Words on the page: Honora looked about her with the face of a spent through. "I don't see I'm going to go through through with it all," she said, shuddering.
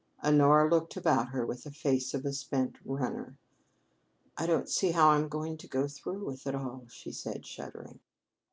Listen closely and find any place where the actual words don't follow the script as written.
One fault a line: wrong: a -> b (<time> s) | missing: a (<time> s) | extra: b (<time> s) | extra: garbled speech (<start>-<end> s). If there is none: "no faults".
wrong: through -> runner (2.9 s)
extra: how (4.9 s)
missing: through (6.2 s)